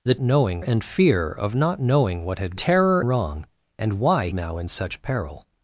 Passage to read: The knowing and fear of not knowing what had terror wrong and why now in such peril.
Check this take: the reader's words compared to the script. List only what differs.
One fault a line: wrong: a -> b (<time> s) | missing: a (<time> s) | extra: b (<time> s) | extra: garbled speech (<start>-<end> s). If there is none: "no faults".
no faults